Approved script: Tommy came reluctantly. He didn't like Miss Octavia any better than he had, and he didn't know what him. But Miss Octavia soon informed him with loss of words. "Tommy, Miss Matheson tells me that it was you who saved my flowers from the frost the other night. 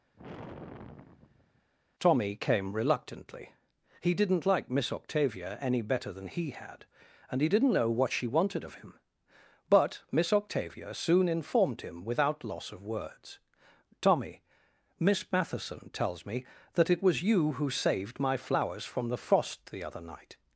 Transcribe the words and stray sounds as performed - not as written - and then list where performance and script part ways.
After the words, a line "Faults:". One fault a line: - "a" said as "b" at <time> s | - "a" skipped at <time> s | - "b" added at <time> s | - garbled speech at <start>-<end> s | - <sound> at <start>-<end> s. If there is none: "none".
Tommy came reluctantly. He didn't like Miss Octavia any better than he had, and he didn't know what she wanted of him. But Miss Octavia soon informed him without loss of words. "Tommy, Miss Matheson tells me that it was you who saved my flowers from the frost the other night.
Faults:
- sigh at 0.1-1.7 s
- "she wanted of" added at 8.1 s
- "with" said as "without" at 12.0 s